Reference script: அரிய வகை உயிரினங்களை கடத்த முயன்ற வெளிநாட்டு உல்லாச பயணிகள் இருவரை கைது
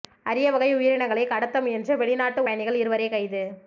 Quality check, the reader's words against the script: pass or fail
fail